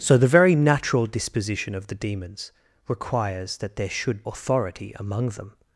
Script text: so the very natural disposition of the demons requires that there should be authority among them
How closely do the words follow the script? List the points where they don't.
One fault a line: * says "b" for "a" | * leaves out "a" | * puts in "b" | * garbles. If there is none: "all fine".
* leaves out "be"